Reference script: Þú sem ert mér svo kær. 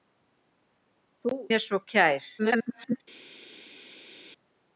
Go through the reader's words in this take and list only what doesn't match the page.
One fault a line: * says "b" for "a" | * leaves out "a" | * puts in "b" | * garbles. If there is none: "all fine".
* leaves out "sem ert"
* garbles